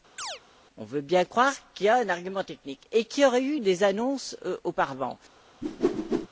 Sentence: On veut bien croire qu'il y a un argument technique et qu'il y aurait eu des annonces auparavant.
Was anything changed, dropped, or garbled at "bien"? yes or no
no